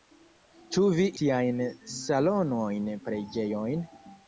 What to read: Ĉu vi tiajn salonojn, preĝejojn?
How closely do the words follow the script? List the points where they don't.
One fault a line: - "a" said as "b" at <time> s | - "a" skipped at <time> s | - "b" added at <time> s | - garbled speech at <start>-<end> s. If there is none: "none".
none